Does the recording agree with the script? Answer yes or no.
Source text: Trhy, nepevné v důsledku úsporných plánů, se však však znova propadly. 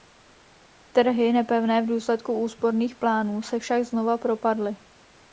no